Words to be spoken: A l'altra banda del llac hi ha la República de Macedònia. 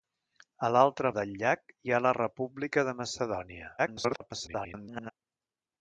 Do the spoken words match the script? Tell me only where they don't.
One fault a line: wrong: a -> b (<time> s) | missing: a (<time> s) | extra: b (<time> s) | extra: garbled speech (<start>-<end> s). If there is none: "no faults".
missing: banda (1.1 s)
extra: garbled speech (3.8-5.1 s)